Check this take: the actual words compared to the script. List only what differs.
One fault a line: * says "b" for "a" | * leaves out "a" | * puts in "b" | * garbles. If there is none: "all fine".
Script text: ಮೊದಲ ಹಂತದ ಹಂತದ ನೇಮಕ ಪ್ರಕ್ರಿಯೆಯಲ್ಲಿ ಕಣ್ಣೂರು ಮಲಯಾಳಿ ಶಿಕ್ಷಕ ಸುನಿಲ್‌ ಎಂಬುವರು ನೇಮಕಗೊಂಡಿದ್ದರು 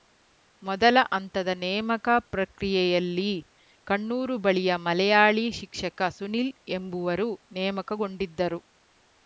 * leaves out "ಹಂತದ"
* puts in "ಬಳಿಯ"